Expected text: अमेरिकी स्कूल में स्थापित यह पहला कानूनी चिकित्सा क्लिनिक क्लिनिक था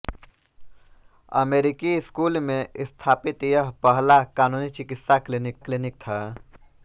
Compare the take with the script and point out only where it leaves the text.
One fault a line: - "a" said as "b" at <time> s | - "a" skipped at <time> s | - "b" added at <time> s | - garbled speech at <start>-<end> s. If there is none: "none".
none